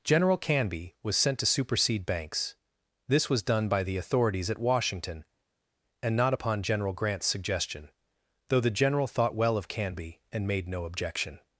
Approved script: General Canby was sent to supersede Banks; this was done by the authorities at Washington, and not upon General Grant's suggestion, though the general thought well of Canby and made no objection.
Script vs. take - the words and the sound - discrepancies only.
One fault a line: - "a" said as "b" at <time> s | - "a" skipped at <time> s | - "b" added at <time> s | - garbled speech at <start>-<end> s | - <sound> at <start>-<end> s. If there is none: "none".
none